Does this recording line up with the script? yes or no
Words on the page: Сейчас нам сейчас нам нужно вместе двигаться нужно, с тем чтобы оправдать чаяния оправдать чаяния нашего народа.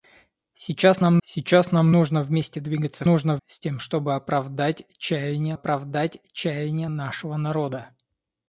yes